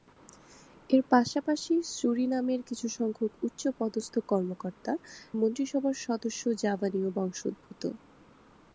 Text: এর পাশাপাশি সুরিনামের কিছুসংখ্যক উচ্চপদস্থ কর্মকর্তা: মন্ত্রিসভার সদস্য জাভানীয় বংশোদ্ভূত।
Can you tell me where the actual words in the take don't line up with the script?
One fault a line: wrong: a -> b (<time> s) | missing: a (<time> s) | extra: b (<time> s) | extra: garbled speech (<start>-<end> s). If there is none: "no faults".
no faults